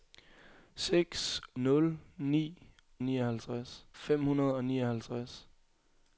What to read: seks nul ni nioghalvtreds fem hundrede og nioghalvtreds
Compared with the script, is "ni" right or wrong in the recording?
right